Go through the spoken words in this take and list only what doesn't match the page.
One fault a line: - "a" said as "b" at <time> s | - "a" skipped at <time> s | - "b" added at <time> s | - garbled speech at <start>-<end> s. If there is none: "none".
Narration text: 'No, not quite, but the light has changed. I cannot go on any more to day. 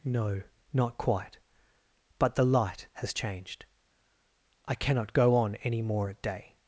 - "to" said as "at" at 6.1 s